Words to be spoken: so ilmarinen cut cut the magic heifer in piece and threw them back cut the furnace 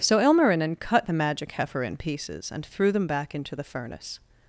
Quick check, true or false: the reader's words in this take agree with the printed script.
false